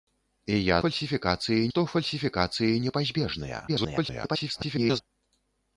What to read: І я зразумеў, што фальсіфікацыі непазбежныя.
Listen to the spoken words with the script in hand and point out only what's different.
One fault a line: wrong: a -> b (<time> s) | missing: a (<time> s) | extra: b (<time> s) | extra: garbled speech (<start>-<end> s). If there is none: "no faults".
wrong: зразумеў -> фальсіфікацыі (0.8 s)
extra: garbled speech (3.7-5.0 s)